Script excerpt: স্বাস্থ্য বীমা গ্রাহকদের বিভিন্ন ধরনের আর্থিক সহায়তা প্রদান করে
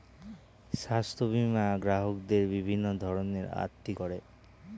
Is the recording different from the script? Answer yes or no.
yes